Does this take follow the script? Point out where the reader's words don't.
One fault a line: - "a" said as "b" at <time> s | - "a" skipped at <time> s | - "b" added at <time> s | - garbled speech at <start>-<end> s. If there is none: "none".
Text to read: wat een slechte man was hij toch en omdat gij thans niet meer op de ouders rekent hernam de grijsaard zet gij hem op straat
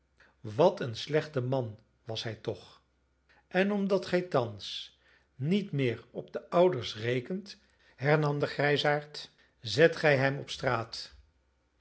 none